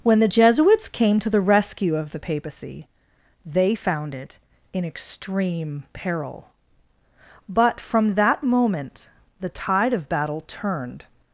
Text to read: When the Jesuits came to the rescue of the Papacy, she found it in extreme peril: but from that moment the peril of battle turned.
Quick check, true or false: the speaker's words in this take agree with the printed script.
false